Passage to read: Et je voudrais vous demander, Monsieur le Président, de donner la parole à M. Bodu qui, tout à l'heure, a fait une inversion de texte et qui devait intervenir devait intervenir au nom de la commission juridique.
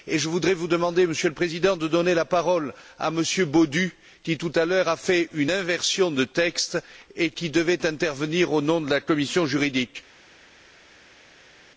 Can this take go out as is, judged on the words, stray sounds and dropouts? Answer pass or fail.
fail